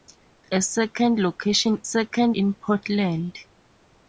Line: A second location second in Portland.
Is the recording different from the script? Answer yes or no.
no